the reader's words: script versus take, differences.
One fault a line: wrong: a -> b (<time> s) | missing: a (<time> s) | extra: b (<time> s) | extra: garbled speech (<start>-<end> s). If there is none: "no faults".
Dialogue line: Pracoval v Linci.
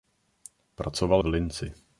no faults